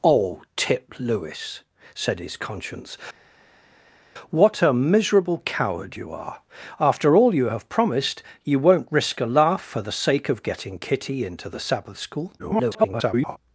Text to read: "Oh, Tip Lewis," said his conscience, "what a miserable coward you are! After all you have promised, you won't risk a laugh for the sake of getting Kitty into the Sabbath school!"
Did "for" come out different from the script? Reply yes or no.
no